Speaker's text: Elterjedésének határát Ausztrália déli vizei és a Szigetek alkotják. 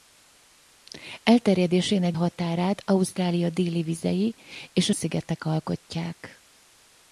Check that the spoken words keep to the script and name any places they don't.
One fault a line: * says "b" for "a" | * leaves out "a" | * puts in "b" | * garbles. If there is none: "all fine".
all fine